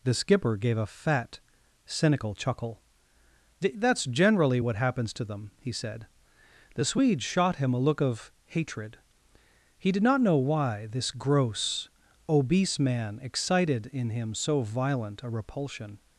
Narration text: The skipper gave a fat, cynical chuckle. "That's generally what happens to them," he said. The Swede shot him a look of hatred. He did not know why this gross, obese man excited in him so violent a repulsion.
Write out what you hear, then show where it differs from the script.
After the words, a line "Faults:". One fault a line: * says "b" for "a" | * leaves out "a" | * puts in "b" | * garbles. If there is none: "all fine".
The skipper gave a fat, cynical chuckle. "That's generally what happens to them," he said. The Swede shot him a look of hatred. He did not know why this gross, obese man excited in him so violent a repulsion.
Faults:
all fine